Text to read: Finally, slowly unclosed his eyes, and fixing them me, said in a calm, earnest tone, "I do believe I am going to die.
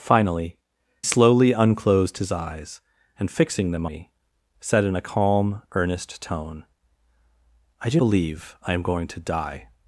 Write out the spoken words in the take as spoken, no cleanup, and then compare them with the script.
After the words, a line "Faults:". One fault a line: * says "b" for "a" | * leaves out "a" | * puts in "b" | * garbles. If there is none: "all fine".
Finally, slowly unclosed his eyes, and fixing them me, said in a calm, earnest tone, "I do believe I am going to die.
Faults:
all fine